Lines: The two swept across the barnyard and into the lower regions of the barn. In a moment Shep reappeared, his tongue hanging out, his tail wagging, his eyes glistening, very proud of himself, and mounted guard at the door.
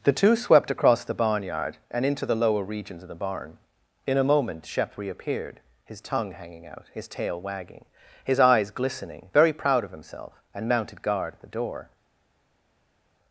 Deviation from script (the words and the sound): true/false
false